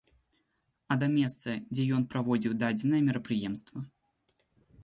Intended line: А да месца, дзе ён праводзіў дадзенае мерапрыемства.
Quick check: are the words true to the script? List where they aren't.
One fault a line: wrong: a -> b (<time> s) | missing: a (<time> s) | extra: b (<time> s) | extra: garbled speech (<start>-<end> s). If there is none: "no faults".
no faults